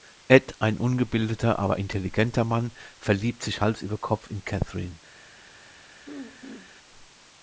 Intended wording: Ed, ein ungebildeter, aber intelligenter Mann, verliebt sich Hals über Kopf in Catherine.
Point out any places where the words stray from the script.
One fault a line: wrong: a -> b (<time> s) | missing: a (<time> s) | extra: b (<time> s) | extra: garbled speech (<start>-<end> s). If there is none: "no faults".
no faults